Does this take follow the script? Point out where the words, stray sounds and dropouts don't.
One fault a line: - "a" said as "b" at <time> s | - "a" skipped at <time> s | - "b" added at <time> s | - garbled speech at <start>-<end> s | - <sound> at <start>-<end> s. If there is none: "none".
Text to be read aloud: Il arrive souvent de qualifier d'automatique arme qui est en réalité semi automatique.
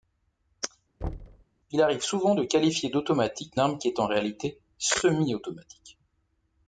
- thud at 1.0-1.5 s